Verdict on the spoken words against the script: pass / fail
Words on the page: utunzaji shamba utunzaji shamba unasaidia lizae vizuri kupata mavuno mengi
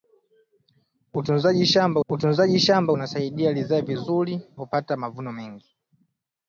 pass